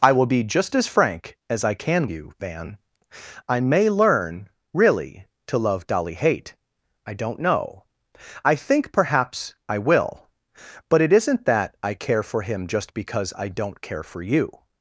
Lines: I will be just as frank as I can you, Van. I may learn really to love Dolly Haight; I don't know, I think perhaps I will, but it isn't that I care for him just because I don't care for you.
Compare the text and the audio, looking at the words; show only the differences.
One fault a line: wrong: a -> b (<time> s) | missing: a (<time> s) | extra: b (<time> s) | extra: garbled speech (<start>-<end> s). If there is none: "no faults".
no faults